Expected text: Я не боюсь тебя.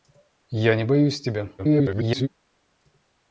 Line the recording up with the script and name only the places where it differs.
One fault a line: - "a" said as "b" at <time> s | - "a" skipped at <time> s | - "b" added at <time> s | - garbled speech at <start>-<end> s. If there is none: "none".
- garbled speech at 1.6-2.3 s